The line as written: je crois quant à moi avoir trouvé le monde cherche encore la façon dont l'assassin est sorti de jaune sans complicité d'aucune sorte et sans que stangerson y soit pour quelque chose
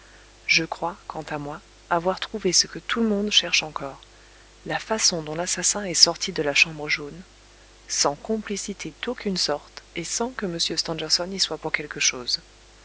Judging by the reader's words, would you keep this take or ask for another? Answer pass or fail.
fail